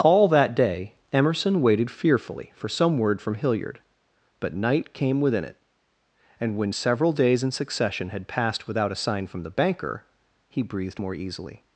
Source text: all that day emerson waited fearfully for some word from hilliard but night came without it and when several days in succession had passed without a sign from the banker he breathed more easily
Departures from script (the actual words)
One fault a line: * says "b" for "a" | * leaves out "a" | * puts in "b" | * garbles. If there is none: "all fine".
* says "within" for "without"